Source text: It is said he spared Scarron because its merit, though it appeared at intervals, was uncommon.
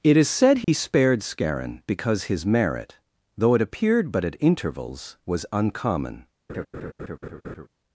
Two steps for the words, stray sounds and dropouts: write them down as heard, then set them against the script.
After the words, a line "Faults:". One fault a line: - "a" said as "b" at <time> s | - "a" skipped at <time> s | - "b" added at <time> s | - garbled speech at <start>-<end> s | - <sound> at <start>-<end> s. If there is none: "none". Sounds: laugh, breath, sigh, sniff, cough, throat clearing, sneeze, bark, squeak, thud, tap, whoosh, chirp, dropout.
It is said he spared Scarron because his merit, though it appeared but at intervals, was uncommon.
Faults:
- dropout at 0.6-0.7 s
- "its" said as "his" at 2.2 s
- "but" added at 4.1 s
- laugh at 6.5-7.7 s